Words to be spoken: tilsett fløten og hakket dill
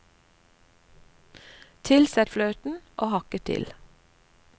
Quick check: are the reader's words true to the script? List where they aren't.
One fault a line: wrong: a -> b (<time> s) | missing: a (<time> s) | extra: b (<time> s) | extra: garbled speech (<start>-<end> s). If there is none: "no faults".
no faults